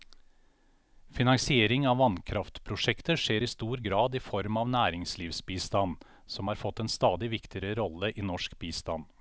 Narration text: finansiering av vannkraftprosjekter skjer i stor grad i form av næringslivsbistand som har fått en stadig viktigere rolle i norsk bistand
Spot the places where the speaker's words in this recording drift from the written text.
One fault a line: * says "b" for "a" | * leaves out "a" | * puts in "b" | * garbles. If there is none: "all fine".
all fine